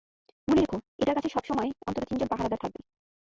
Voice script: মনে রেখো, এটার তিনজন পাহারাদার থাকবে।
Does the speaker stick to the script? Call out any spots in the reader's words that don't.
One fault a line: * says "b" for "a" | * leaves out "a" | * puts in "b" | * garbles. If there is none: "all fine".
* puts in "কাছে সবসময় অন্তত"